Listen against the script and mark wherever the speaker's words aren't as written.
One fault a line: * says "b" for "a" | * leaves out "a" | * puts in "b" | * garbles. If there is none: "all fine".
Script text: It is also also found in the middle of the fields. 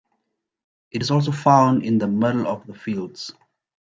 * leaves out "also"